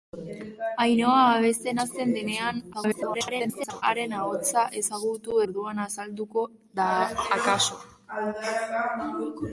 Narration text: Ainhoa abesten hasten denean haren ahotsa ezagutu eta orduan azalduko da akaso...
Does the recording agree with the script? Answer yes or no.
no